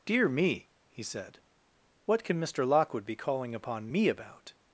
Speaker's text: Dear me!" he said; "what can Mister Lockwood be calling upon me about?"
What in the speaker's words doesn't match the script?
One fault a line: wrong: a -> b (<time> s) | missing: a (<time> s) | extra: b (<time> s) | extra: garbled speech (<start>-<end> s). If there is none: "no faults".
no faults